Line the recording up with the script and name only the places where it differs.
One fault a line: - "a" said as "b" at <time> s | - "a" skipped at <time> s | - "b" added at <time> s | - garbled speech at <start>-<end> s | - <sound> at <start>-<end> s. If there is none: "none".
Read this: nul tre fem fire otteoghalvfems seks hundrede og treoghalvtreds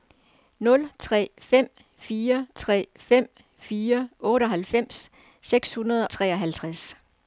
- "tre fem fire" added at 2.6 s
- "og" skipped at 6.1 s